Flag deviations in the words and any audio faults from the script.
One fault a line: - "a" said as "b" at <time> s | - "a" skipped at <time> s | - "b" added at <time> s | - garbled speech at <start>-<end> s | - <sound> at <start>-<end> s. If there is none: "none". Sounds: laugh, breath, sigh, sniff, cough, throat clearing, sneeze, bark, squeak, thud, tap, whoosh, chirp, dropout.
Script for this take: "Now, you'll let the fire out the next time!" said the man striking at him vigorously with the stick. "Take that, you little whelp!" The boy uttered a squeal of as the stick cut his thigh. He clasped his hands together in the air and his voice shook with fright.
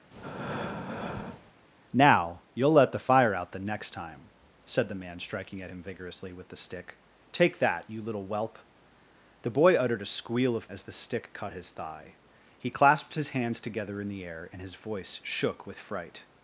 - breath at 0.1-1.5 s